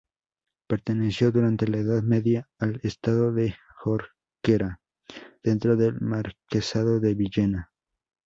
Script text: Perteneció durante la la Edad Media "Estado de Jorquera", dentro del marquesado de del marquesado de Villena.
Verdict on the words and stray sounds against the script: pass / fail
fail